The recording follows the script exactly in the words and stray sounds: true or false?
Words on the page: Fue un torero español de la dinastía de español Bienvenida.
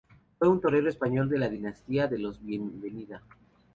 false